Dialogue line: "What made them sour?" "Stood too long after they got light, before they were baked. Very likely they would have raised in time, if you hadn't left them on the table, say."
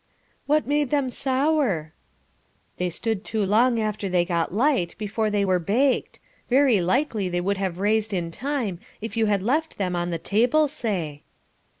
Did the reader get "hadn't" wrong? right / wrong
wrong